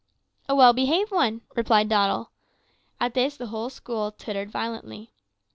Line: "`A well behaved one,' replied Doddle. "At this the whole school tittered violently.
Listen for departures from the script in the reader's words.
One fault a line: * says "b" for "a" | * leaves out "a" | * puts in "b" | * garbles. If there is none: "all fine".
all fine